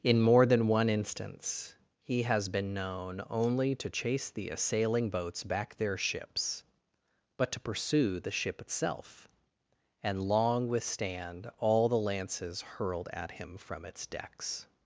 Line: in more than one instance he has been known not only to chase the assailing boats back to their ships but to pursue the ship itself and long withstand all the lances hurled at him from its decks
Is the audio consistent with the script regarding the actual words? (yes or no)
no